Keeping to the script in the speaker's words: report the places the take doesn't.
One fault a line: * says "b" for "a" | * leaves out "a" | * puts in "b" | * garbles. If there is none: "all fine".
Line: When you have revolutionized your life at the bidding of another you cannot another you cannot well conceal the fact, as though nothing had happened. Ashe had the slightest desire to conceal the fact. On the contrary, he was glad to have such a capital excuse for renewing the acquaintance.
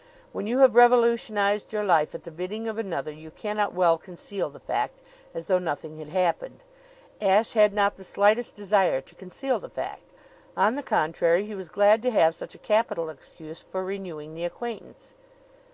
* leaves out "another you cannot"
* puts in "not"